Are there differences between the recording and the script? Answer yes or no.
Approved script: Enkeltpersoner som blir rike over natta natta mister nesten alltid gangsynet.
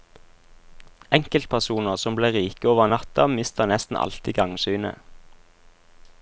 yes